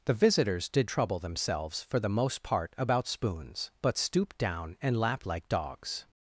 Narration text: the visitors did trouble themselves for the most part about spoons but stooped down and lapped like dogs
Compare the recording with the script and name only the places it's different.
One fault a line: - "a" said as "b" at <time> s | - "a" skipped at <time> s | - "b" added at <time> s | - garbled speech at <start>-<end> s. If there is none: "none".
none